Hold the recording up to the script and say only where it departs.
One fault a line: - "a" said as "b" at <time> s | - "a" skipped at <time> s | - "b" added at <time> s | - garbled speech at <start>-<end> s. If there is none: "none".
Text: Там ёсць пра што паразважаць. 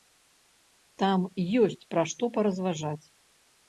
none